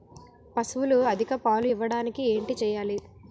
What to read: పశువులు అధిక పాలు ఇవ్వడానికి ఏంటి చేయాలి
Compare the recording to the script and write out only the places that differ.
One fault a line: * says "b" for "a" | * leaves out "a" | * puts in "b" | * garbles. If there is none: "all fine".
all fine